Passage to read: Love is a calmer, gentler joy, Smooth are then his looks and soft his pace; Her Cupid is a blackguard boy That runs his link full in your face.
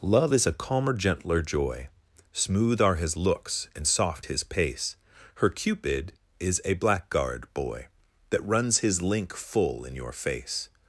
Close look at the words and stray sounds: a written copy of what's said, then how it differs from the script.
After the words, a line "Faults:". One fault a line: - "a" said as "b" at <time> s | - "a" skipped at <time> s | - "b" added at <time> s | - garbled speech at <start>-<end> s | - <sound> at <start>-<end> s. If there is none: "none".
Love is a calmer, gentler joy, Smooth are his looks and soft his pace; Her Cupid is a blackguard boy That runs his link full in your face.
Faults:
- "then" skipped at 3.0 s